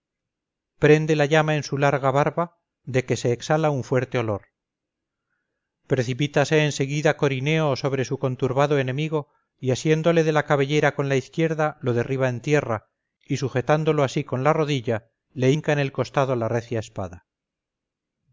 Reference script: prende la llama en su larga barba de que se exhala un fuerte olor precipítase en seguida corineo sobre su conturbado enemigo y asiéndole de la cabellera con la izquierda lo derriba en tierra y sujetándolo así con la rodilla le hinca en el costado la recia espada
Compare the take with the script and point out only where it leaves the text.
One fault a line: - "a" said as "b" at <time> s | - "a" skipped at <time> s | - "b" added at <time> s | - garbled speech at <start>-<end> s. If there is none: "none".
none